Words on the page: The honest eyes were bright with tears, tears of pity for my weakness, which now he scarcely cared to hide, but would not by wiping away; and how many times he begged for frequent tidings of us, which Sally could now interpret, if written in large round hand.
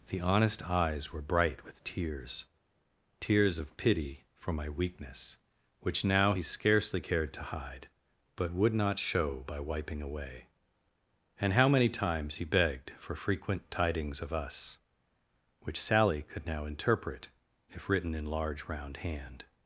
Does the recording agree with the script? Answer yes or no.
no